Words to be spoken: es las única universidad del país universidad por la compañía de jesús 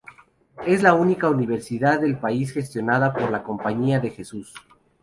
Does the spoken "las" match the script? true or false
false